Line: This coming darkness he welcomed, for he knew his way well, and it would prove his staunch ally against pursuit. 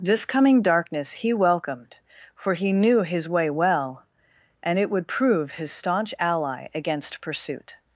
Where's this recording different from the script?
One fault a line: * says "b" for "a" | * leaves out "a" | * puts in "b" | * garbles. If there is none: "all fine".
all fine